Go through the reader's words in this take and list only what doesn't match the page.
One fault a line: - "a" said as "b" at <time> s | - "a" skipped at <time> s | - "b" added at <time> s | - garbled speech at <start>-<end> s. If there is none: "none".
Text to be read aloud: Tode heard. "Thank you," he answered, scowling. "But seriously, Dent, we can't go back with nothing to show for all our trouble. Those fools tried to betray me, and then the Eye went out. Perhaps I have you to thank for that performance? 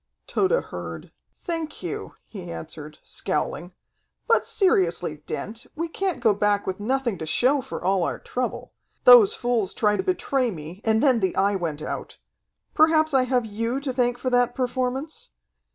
none